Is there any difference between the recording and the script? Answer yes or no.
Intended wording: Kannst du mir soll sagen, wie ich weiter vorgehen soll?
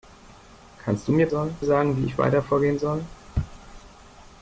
no